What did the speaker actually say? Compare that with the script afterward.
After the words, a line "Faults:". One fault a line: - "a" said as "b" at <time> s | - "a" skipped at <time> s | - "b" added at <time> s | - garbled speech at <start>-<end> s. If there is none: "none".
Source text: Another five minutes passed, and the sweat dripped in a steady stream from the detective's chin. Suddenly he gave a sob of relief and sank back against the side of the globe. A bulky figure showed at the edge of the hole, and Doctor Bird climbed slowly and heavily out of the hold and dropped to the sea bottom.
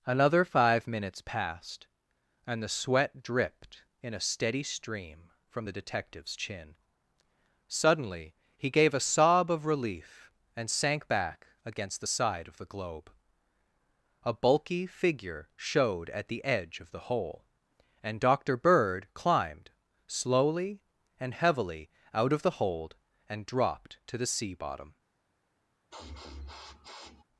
Another five minutes passed, and the sweat dripped in a steady stream from the detective's chin. Suddenly he gave a sob of relief and sank back against the side of the globe. A bulky figure showed at the edge of the hole, and Doctor Bird climbed slowly and heavily out of the hold and dropped to the sea bottom.
Faults:
none